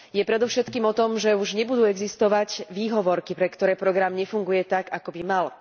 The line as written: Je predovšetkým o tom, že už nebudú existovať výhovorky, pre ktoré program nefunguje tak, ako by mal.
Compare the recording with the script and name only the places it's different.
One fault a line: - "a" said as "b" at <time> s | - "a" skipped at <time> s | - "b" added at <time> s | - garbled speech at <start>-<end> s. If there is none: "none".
none